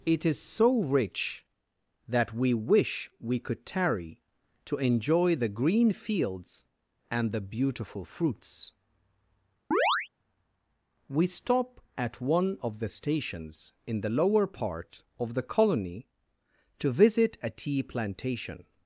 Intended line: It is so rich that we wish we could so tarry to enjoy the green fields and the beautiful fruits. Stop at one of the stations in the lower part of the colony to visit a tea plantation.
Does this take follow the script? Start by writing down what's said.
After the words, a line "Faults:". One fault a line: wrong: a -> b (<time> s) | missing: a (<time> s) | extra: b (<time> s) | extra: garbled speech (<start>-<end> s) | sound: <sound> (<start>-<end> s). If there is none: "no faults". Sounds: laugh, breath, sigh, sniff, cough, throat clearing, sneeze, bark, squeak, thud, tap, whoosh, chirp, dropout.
It is so rich that we wish we could tarry to enjoy the green fields and the beautiful fruits. We stop at one of the stations in the lower part of the colony to visit a tea plantation.
Faults:
missing: so (3.6 s)
sound: chirp (9.7-10.1 s)
extra: We (11.1 s)